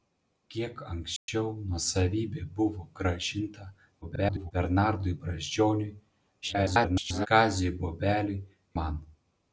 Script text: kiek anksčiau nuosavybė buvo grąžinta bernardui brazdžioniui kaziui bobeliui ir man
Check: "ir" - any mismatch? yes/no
yes